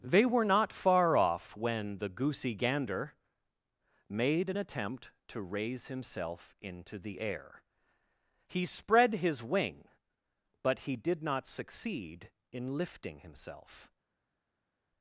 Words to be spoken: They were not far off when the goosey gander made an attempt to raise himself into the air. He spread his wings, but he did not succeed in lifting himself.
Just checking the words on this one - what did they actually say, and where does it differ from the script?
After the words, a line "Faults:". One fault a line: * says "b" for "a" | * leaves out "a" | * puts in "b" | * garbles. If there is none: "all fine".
They were not far off when the goosey gander made an attempt to raise himself into the air. He spread his wing, but he did not succeed in lifting himself.
Faults:
* says "wing" for "wings"